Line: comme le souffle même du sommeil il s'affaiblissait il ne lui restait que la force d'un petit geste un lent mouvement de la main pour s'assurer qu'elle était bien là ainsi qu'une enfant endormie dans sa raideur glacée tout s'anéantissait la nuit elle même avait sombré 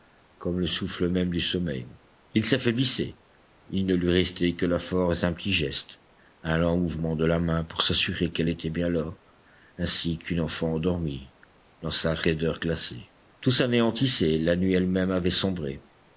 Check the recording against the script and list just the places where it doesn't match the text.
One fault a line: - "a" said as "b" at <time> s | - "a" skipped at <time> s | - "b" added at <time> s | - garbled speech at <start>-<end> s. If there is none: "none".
none